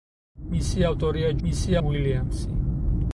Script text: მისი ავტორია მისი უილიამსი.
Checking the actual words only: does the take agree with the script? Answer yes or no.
yes